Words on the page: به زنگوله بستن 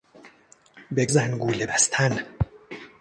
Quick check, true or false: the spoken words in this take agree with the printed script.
true